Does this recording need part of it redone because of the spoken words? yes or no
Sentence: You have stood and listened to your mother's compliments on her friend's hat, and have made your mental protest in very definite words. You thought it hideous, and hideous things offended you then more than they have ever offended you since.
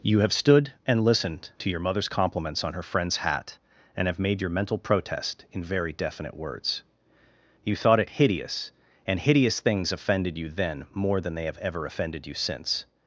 no